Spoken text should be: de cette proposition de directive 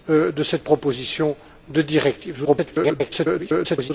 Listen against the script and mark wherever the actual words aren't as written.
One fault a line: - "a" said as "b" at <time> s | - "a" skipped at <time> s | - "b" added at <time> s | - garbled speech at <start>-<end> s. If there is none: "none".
- garbled speech at 2.4-3.9 s